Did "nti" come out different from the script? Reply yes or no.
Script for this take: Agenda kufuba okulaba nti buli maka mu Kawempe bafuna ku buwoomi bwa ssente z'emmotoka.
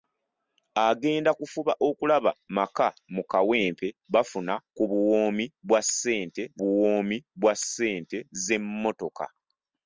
yes